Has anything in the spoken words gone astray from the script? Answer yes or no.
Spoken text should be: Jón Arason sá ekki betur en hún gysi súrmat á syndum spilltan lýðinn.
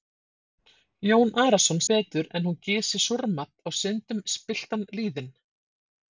yes